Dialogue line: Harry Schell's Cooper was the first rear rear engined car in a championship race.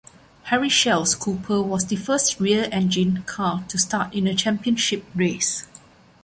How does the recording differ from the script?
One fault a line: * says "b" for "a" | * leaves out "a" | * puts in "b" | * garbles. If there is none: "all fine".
* leaves out "rear"
* puts in "to start"